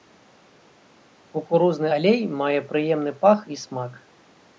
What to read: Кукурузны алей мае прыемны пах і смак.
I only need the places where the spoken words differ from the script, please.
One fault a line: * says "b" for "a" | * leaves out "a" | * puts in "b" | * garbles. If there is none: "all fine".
all fine